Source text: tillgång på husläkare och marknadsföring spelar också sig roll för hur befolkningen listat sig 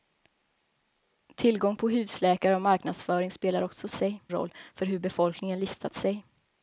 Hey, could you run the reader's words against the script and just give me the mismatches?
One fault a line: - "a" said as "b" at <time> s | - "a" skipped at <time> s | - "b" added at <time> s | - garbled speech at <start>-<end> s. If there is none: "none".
none